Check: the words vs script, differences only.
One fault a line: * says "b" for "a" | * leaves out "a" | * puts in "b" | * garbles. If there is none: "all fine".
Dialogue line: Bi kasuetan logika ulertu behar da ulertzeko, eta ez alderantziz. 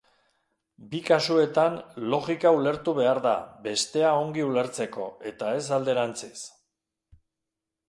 * puts in "bestea ongi"